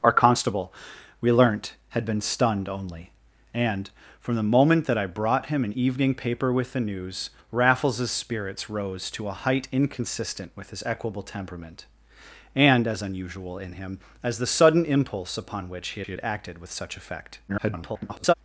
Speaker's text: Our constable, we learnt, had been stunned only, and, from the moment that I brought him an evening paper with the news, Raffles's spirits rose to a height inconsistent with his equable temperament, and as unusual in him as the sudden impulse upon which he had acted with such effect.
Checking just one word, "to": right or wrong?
right